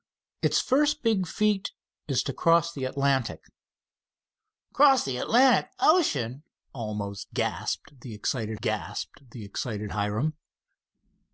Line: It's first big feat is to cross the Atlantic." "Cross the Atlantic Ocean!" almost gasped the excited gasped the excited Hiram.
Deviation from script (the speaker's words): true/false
false